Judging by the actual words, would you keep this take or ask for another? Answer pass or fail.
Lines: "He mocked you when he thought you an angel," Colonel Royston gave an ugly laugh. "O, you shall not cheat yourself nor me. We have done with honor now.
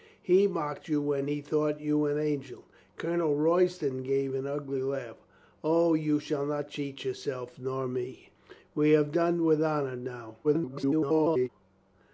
fail